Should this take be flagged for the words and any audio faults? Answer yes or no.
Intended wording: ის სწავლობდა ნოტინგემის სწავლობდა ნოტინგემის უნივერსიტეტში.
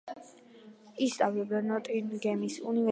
yes